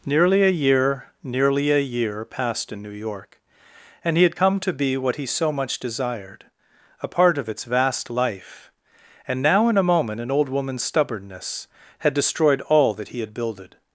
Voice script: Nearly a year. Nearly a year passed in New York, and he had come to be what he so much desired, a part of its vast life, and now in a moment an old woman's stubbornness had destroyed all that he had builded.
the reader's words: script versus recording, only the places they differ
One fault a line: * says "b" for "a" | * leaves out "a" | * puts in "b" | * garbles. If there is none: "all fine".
all fine